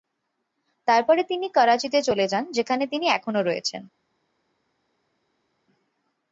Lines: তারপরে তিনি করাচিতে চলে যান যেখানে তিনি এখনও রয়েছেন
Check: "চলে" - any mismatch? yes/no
no